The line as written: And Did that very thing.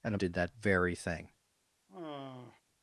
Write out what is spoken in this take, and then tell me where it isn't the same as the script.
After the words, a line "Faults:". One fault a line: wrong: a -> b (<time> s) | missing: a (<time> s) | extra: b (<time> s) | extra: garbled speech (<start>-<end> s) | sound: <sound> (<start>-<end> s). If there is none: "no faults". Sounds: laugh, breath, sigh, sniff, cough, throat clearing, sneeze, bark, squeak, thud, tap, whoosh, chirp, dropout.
And Did that very thing.
Faults:
sound: sigh (1.9-2.6 s)